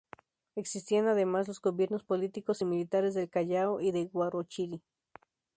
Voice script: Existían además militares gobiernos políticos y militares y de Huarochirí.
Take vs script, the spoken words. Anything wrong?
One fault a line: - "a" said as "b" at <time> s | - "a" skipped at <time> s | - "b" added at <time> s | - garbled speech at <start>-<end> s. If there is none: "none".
- "militares" said as "los" at 1.5 s
- "del Callao" added at 3.1 s